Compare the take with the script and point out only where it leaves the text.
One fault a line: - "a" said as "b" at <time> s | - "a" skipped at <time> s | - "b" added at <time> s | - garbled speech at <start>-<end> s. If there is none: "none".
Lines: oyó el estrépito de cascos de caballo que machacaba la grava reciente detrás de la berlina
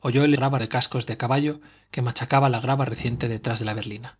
- "estrépito" said as "grava" at 0.3 s